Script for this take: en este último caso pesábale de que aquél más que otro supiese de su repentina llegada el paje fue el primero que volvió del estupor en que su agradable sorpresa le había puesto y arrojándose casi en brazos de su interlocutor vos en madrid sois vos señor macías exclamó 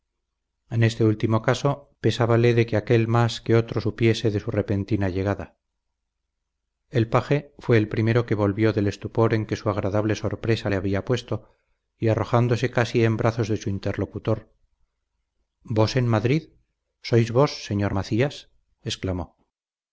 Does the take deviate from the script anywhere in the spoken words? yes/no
no